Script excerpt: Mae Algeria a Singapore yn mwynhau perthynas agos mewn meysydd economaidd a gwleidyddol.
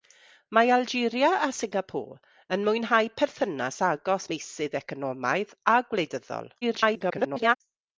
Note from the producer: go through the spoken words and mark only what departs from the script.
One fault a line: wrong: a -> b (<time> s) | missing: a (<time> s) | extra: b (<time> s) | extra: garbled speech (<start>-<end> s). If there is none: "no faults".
missing: mewn (4.3 s)
extra: garbled speech (6.6-7.6 s)